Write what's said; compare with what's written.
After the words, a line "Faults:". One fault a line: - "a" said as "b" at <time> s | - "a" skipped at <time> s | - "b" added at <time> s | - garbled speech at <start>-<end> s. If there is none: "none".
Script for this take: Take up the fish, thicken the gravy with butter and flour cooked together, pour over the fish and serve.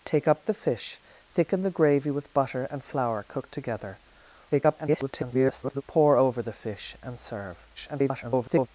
Take up the fish, thicken the gravy with butter and flour cooked together, [garbled] pour over the fish and serve. [garbled]
Faults:
- garbled speech at 4.5-5.8 s
- garbled speech at 7.8-8.7 s